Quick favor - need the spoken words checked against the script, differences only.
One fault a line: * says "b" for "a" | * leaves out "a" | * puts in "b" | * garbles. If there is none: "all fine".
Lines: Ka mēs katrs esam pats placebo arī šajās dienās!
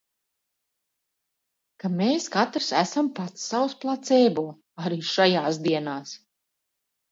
* puts in "savs"